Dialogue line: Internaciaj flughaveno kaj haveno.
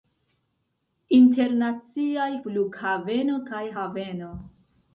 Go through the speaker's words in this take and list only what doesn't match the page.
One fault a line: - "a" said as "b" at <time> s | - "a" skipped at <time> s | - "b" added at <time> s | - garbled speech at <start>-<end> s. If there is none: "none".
none